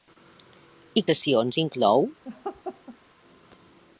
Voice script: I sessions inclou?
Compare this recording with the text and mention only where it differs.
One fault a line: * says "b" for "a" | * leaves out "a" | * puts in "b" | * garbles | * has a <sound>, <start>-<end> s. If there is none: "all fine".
* has a laugh, 2.2-3.0 s